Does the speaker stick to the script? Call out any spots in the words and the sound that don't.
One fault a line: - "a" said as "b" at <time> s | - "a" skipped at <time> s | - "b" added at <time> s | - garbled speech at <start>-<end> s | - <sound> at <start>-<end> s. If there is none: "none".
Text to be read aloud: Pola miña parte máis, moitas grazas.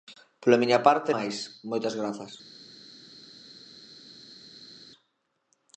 none